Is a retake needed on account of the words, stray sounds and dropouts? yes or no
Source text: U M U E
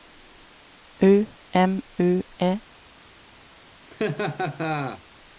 yes